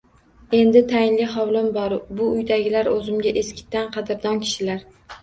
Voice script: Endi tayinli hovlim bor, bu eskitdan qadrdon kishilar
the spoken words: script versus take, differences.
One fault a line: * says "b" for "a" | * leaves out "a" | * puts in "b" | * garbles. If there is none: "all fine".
* puts in "uydagilar o‘zimga"